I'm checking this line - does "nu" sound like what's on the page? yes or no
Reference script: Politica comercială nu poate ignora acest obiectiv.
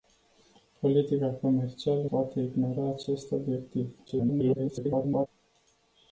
no